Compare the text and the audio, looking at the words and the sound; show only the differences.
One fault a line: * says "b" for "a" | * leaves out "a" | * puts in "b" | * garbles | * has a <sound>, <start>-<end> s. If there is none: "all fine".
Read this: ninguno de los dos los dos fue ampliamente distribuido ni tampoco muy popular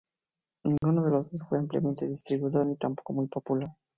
* has a dropout, 0.8-0.8 s
* leaves out "los dos"